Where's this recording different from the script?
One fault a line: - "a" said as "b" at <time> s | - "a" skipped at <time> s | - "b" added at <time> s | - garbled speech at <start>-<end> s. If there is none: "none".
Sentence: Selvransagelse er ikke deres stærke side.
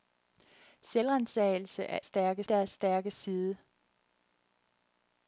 - "ikke" said as "stærke" at 2.0 s